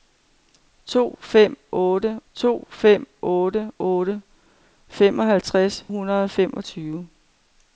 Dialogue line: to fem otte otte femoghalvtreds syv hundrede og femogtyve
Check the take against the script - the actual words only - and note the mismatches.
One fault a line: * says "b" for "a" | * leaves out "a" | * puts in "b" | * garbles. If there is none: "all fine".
* puts in "to fem"
* puts in "otte"
* leaves out "syv"